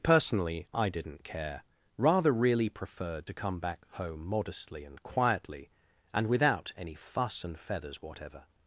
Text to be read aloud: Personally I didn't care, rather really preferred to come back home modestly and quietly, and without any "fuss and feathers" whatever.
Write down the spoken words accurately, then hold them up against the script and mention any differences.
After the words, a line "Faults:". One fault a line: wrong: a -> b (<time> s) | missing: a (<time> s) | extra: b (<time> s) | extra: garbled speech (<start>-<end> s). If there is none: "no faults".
Personally I didn't care, rather really preferred to come back home modestly and quietly, and without any "fuss and feathers" whatever.
Faults:
no faults